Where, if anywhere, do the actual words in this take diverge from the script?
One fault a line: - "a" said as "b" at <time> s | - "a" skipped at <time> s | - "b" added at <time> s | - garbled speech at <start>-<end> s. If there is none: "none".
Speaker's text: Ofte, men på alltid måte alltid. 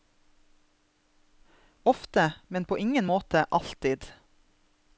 - "alltid" said as "ingen" at 2.8 s